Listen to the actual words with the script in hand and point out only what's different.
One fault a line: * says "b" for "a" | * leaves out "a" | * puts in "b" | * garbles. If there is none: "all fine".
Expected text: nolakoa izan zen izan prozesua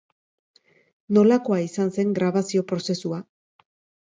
* says "grabazio" for "izan"